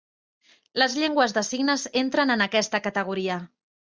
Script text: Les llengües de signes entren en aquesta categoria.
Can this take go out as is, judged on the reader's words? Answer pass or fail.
pass